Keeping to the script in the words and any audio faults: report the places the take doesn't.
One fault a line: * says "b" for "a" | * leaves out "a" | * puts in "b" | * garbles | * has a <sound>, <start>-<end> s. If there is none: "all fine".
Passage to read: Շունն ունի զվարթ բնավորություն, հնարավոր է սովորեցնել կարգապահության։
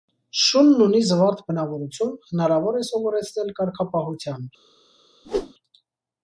* has a whoosh, 5.2-5.5 s